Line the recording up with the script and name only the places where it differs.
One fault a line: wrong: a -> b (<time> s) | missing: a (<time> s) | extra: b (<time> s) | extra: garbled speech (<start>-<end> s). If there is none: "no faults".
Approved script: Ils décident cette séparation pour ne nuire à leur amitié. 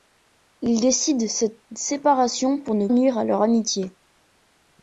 no faults